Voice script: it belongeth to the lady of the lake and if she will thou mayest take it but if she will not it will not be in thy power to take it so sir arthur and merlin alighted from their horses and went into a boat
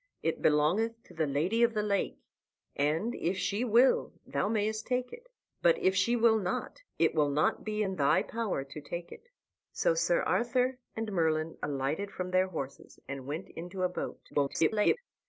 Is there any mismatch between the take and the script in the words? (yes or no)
yes